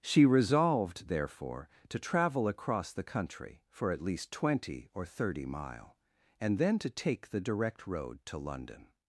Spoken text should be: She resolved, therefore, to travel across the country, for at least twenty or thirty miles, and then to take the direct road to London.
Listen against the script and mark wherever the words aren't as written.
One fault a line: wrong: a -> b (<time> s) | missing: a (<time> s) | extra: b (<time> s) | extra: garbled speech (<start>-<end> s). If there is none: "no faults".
wrong: miles -> mile (5.5 s)